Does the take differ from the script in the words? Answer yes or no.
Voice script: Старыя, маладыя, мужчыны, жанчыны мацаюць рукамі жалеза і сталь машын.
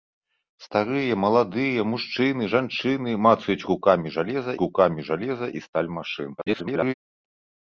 yes